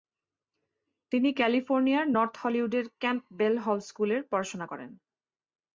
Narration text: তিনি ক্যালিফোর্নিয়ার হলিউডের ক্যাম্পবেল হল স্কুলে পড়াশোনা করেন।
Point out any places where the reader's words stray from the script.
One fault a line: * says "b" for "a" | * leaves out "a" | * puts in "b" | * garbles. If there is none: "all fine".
* puts in "নর্থ"